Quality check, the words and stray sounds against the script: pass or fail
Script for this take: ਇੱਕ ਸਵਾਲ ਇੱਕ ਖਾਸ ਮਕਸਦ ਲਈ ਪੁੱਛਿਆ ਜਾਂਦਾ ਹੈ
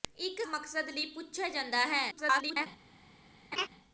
fail